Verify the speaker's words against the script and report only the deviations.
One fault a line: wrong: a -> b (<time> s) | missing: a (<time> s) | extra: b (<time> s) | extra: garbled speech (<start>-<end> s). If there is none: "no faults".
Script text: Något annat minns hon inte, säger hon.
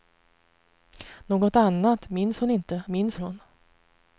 wrong: säger -> minns (2.9 s)